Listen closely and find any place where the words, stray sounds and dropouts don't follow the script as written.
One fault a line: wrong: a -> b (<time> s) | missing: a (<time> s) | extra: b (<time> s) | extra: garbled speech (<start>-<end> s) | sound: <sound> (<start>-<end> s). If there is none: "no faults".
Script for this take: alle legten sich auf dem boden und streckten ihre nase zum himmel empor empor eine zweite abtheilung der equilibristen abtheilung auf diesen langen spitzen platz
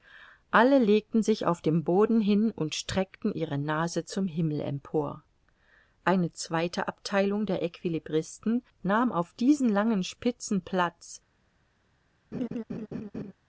extra: hin (2.2 s)
missing: empor (5.2 s)
wrong: abtheilung -> nahm (8.8 s)
sound: laugh (12.3-13.3 s)